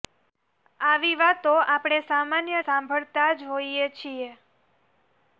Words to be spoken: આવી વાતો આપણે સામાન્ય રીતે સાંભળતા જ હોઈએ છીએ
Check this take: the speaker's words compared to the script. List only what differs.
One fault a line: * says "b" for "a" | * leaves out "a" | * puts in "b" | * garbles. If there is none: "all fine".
* leaves out "રીતે"